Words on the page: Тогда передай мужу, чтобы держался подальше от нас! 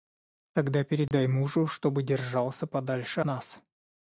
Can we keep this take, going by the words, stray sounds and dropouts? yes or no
no